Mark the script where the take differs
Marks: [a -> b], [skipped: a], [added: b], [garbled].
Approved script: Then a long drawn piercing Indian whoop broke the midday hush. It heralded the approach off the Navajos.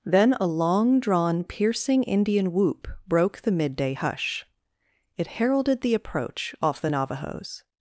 Then a long drawn piercing Indian whoop broke the midday hush. It heralded the approach off the Navajos.